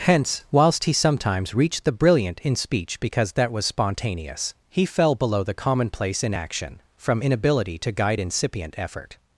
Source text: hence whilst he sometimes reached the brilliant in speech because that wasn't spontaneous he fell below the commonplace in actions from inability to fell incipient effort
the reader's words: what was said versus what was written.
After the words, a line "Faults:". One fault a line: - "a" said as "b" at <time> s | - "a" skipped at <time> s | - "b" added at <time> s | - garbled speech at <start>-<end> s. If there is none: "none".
hence whilst he sometimes reached the brilliant in speech because that was spontaneous he fell below the commonplace in action from inability to guide incipient effort
Faults:
- "wasn't" said as "was" at 3.5 s
- "actions" said as "action" at 6.3 s
- "fell" said as "guide" at 7.9 s